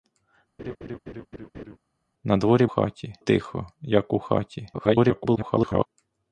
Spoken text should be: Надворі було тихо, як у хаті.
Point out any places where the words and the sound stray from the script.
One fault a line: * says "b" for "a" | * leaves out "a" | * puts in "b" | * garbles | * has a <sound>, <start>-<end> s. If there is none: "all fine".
* has a laugh, 0.6-1.8 s
* says "хаті" for "було"
* garbles